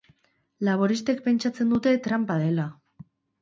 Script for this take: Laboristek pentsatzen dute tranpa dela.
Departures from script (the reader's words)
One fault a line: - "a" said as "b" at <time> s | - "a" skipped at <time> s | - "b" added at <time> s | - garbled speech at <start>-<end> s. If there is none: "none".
none